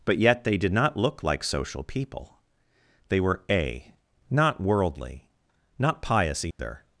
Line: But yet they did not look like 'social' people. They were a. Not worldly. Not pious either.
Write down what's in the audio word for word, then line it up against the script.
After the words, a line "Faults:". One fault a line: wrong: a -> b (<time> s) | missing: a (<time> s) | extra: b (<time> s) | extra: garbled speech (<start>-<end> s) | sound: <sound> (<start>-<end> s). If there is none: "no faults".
But yet they did not look like 'social' people. They were a. Not worldly. Not pious either.
Faults:
sound: dropout (6.5-6.6 s)